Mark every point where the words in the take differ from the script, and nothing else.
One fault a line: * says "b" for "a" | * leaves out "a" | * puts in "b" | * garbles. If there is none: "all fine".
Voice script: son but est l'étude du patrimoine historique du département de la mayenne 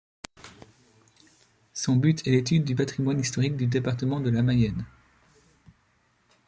all fine